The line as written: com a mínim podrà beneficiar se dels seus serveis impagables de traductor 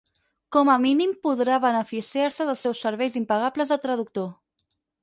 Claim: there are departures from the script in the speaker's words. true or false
false